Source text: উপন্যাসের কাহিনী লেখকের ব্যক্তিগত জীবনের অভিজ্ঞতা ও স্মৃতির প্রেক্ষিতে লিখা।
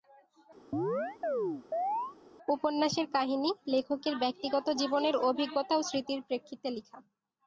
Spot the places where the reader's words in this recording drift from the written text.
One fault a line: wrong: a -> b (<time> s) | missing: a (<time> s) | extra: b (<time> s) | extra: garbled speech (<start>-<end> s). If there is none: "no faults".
no faults